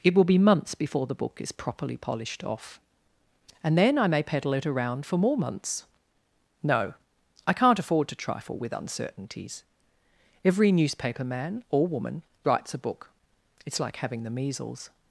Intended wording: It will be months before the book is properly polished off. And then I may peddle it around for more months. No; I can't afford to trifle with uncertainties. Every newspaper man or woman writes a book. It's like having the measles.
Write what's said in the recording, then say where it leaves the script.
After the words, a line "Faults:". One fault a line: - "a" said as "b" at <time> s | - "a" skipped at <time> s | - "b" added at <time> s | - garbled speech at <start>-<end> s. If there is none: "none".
It will be months before the book is properly polished off. And then I may peddle it around for more months. No; I can't afford to trifle with uncertainties. Every newspaper man or woman writes a book. It's like having the measles.
Faults:
none